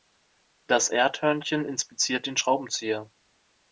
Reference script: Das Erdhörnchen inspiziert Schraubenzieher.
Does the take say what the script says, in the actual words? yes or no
no